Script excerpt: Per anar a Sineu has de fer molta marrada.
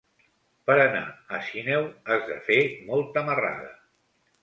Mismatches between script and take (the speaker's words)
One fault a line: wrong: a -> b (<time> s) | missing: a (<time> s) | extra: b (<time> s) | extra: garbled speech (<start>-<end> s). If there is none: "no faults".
no faults